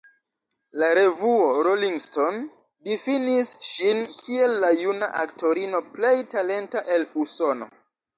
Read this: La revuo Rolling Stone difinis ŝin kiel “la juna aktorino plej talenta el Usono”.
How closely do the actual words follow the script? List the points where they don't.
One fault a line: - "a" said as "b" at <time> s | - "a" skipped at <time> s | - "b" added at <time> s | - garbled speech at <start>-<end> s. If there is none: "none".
none